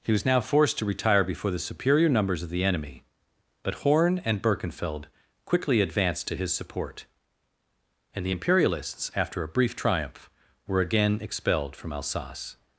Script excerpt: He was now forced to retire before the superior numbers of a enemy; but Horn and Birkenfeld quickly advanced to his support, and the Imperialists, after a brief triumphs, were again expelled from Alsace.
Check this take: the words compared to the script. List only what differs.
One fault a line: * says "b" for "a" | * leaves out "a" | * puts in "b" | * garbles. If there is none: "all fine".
* says "the" for "a"
* says "triumph" for "triumphs"